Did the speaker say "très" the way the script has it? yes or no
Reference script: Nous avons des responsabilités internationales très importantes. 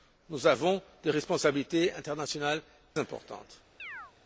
no